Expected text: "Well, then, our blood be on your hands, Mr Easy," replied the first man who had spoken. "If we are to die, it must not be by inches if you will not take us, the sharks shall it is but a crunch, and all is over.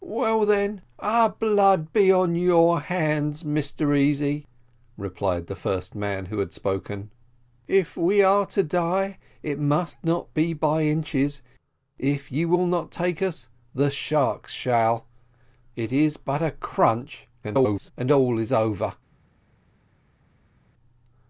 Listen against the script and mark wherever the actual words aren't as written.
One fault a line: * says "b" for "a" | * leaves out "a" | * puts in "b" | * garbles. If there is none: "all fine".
* garbles